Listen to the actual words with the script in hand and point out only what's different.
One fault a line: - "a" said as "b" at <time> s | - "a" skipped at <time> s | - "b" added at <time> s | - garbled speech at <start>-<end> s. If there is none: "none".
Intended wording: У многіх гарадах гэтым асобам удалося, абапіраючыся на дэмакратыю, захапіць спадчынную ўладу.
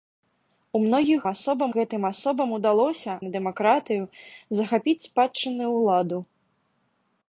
- "гарадах" said as "асобам" at 1.3 s
- "абапіраючыся" skipped at 3.1 s